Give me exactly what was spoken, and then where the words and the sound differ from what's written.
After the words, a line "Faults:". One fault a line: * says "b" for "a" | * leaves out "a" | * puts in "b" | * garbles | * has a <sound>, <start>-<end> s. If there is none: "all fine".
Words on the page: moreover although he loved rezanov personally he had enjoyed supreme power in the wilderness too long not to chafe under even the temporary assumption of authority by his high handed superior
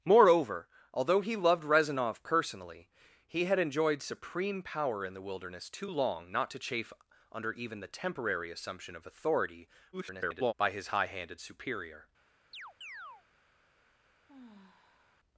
moreover although he loved rezanov personally he had enjoyed supreme power in the wilderness too long not to chafe under even the temporary assumption of authority [garbled] by his high handed superior
Faults:
* garbles
* has a chirp, 12.5-13.2 s
* has a sigh, 14.3-15.2 s